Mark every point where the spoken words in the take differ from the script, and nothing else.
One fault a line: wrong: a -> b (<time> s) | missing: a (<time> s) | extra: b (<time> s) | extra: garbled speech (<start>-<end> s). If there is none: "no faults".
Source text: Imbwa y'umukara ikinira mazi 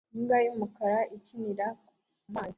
no faults